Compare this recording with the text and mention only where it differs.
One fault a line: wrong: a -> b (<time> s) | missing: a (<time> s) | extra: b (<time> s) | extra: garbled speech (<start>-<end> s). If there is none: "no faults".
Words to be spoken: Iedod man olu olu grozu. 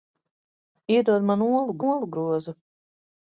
no faults